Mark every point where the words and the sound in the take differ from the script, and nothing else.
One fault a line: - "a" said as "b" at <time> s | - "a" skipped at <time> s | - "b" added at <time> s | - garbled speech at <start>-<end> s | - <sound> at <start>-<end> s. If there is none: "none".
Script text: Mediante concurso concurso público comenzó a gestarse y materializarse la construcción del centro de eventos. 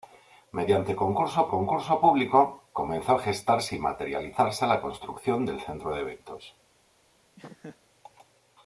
- laugh at 7.4-7.8 s